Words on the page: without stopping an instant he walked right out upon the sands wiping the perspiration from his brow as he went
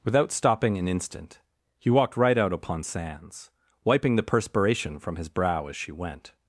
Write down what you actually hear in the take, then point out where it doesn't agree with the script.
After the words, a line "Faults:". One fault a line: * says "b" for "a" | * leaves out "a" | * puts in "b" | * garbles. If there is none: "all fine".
without stopping an instant he walked right out upon sands wiping the perspiration from his brow as she went
Faults:
* leaves out "the"
* says "she" for "he"